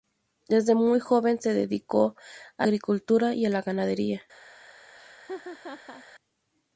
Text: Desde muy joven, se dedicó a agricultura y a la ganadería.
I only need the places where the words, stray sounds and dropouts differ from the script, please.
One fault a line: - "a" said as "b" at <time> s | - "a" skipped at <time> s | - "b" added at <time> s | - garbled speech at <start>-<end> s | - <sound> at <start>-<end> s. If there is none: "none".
- laugh at 5.0-6.0 s